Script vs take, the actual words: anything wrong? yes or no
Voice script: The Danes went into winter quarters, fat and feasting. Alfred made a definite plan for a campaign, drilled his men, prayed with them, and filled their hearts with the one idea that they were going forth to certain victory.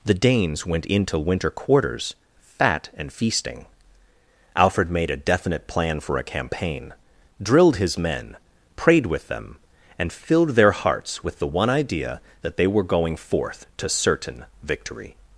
no